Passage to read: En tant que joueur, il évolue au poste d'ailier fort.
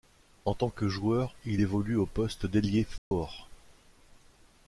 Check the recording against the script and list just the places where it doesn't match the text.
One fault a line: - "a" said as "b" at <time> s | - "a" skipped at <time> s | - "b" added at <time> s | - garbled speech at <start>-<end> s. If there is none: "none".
none